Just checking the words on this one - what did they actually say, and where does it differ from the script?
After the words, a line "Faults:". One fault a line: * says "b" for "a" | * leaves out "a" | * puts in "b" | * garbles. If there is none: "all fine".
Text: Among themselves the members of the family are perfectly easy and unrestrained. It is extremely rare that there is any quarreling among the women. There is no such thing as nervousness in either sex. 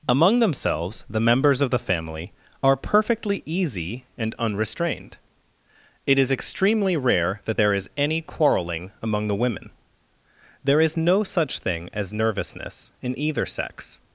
Among themselves the members of the family are perfectly easy and unrestrained. It is extremely rare that there is any quarreling among the women. There is no such thing as nervousness in either sex.
Faults:
all fine